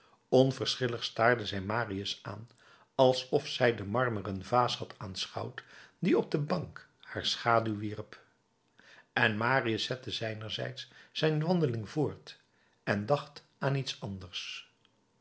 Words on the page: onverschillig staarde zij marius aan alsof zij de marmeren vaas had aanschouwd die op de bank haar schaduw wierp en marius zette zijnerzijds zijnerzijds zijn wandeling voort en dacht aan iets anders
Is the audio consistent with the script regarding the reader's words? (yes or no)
no